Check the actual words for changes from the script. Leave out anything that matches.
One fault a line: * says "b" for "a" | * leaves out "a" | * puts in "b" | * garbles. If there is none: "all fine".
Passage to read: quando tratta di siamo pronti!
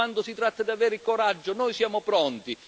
* puts in "si"
* puts in "avere coraggio noi"